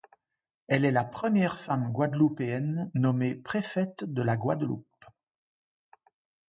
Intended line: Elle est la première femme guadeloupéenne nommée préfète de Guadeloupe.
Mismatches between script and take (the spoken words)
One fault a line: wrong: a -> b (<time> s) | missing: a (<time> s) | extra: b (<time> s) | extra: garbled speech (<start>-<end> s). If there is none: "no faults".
extra: la (4.2 s)